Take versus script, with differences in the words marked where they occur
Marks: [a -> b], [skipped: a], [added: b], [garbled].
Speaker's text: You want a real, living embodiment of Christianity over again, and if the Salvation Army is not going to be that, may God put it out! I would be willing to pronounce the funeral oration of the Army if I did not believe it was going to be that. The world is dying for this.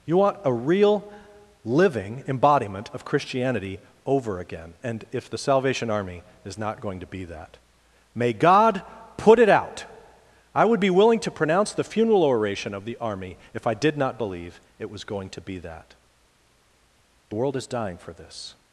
You want a real, living embodiment of Christianity over again, and if the Salvation Army is not going to be that, may God put it out! I would be willing to pronounce the funeral oration of the Army if I did not believe it was going to be that. The world is dying for this.